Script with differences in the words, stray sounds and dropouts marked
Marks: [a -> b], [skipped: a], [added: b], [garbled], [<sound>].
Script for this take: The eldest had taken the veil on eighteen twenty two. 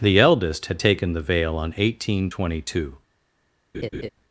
The eldest had taken the veil on eighteen twenty two. [laugh]